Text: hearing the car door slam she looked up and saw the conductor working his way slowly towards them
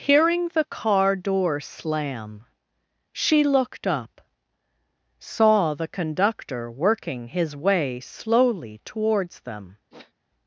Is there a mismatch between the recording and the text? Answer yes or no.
yes